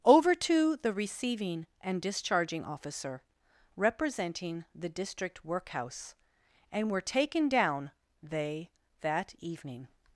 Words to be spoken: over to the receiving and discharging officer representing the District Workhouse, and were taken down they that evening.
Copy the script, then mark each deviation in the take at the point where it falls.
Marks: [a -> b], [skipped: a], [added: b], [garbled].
over to the receiving and discharging officer representing the District Workhouse, and were taken down they that evening.